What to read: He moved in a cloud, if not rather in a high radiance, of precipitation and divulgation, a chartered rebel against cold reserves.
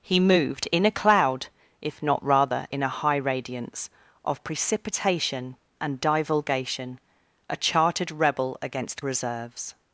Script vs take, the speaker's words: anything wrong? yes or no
yes